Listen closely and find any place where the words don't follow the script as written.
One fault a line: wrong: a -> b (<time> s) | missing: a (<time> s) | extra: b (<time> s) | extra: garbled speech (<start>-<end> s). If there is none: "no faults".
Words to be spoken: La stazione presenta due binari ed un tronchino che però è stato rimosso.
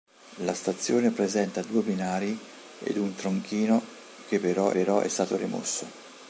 extra: però (4.7 s)